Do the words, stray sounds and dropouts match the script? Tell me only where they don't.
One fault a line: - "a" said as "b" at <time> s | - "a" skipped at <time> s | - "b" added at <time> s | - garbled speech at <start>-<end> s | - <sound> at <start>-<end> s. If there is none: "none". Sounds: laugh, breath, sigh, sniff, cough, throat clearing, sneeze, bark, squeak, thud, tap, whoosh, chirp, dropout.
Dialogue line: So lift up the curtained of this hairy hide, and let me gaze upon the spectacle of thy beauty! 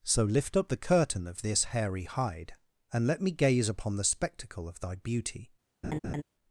- "curtained" said as "curtain" at 0.8 s
- laugh at 5.8-6.2 s